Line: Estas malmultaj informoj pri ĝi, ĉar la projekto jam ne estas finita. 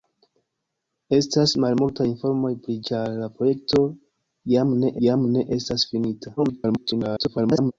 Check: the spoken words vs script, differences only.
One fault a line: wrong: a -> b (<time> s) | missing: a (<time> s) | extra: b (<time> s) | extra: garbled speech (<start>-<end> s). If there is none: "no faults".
missing: ĝi (2.8 s)
extra: jam ne (5.1 s)
extra: garbled speech (6.4-7.7 s)